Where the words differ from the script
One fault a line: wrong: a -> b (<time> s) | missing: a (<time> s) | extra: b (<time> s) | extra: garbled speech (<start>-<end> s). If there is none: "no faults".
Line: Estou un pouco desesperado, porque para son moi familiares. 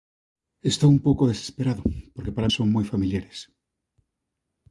no faults